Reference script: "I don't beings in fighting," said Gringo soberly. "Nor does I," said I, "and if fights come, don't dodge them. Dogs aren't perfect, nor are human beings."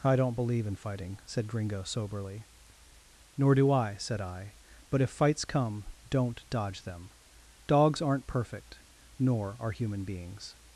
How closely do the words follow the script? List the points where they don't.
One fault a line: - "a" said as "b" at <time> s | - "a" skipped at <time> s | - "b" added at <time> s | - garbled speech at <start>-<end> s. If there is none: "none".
- "beings" said as "believe" at 0.3 s
- "does" said as "do" at 3.5 s
- "and" said as "but" at 4.9 s